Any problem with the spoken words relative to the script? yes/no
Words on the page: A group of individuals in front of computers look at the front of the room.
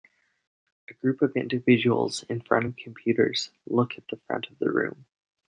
no